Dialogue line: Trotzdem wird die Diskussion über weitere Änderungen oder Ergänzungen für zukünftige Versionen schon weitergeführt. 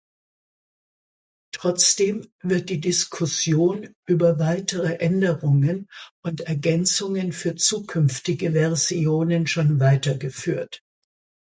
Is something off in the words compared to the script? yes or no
yes